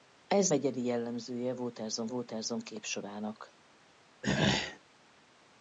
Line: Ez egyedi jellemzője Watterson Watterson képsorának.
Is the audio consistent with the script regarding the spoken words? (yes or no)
yes